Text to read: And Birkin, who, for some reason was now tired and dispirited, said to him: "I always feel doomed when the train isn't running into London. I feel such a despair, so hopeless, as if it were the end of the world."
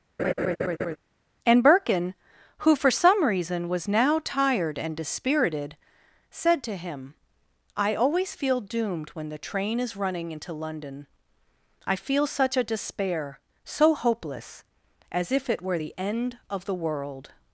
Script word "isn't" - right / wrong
wrong